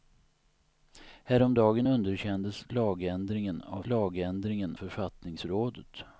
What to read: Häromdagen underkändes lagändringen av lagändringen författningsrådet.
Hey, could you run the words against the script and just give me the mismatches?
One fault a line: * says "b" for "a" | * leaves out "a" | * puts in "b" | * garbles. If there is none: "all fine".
all fine